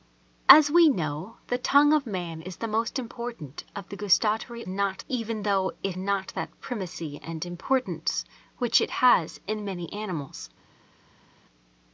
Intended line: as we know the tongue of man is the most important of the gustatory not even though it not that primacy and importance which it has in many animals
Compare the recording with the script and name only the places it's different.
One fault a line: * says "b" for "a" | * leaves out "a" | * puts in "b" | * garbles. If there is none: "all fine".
all fine